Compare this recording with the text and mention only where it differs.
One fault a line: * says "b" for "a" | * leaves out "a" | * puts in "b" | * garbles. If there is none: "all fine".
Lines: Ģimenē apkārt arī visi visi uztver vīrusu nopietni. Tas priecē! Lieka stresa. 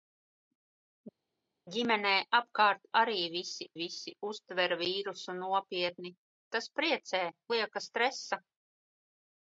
all fine